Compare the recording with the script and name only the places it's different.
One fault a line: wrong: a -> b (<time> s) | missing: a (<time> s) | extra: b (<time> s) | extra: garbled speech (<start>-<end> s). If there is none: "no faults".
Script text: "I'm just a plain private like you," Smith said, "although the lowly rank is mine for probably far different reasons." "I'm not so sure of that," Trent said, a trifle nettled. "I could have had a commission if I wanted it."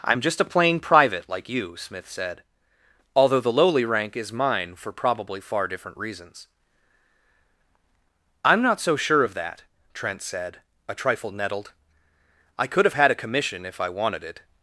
no faults